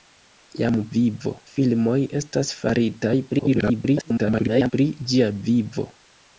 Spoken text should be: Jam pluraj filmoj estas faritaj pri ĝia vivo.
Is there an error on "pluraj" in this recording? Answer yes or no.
yes